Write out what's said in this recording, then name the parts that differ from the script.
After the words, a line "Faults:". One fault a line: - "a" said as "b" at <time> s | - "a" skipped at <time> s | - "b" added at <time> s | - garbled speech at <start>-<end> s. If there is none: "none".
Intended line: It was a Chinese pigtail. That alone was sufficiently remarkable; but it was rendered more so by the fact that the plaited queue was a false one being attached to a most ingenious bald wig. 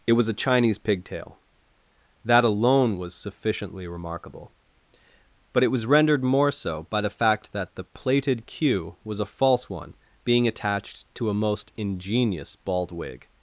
It was a Chinese pigtail. That alone was sufficiently remarkable; but it was rendered more so by the fact that the plaited queue was a false one being attached to a most ingenious bald wig.
Faults:
none